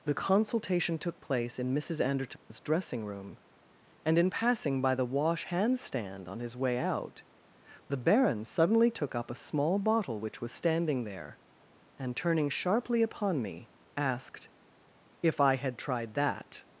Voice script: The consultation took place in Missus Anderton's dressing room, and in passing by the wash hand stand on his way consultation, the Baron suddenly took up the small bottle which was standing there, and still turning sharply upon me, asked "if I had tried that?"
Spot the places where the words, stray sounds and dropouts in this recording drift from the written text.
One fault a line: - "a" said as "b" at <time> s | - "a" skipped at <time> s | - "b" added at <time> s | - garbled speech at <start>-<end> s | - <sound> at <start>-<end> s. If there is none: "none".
- dropout at 2.4-2.5 s
- "consultation" said as "out" at 6.8 s
- "the" said as "a" at 9.3 s
- "still" skipped at 12.2 s